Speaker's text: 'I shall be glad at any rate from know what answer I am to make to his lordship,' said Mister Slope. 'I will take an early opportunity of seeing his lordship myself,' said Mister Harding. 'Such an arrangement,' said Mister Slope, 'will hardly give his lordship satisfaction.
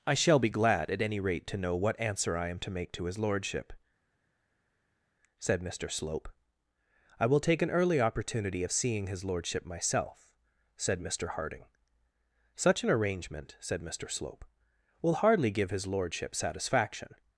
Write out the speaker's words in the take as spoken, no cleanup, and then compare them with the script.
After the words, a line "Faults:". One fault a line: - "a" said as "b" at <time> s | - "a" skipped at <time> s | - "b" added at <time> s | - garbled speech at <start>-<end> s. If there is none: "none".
'I shall be glad at any rate to know what answer I am to make to his lordship,' said Mister Slope. 'I will take an early opportunity of seeing his lordship myself,' said Mister Harding. 'Such an arrangement,' said Mister Slope, 'will hardly give his lordship satisfaction.
Faults:
- "from" said as "to" at 1.5 s